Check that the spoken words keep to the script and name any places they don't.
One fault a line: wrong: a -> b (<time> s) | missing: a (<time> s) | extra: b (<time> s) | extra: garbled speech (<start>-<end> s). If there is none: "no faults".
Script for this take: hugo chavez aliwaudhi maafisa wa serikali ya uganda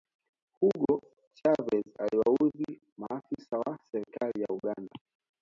no faults